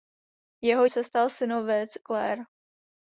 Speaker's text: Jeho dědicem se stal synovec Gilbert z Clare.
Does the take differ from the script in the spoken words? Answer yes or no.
yes